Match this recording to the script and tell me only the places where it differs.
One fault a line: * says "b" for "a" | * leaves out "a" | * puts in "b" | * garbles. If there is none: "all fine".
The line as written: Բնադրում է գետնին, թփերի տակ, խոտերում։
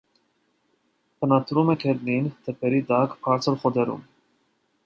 * puts in "բարձր"